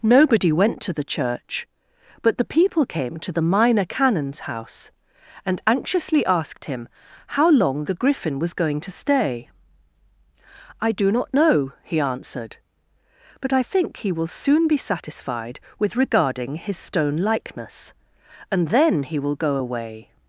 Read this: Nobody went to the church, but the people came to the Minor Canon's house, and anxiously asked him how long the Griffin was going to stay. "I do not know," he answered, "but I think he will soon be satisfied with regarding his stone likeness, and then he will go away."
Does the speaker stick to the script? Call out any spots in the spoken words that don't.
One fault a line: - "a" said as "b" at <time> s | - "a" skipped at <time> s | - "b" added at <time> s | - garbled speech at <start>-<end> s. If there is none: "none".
none